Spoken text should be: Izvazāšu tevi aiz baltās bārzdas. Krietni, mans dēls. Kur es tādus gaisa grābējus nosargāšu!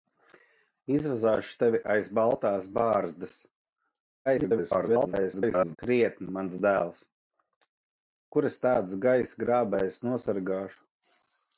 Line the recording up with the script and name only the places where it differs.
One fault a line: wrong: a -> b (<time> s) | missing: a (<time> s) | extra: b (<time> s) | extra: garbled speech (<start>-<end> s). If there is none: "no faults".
extra: garbled speech (4.3-5.8 s)